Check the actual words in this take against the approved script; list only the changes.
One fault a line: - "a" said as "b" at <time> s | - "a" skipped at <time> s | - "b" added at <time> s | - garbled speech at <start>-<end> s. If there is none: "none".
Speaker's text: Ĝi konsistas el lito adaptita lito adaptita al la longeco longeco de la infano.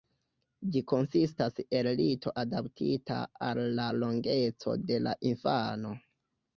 - "lito adaptita" skipped at 3.2 s
- "longeco" skipped at 4.8 s